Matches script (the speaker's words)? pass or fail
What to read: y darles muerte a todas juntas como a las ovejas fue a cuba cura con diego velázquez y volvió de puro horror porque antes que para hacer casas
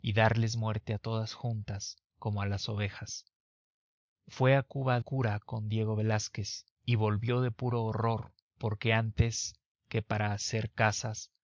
pass